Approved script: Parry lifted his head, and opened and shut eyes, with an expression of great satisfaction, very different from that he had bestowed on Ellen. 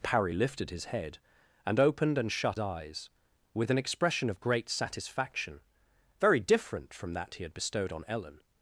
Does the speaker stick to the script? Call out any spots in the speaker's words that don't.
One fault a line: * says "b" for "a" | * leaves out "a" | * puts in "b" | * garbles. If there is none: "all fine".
all fine